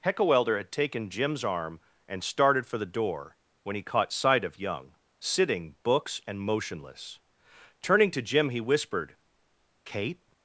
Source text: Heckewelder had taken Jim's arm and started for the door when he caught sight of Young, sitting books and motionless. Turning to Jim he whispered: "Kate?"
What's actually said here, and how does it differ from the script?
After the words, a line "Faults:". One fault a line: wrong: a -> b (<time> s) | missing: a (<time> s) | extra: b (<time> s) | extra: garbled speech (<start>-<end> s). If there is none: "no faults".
Heckewelder had taken Jim's arm and started for the door when he caught sight of Young, sitting books and motionless. Turning to Jim he whispered: "Kate?"
Faults:
no faults